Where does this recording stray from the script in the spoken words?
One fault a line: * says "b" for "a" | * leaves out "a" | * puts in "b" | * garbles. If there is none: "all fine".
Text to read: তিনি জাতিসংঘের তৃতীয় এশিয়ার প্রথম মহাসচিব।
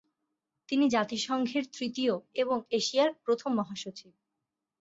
* puts in "এবং"